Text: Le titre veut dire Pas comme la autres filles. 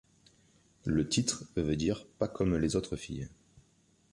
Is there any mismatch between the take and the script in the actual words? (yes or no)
yes